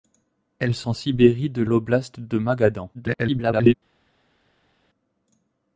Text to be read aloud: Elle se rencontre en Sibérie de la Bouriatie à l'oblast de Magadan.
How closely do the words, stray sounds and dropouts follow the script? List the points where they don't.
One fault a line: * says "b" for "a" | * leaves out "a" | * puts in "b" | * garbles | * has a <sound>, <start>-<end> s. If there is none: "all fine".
* leaves out "rencontre"
* leaves out "la Bouriatie à"
* garbles